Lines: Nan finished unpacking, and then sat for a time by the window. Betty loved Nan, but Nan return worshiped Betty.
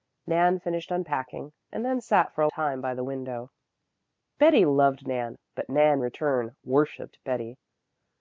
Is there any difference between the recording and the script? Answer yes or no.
no